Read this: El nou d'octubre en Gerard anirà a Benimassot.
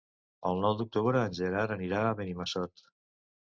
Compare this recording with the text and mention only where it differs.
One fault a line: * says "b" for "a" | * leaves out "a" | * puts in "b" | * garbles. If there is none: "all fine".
all fine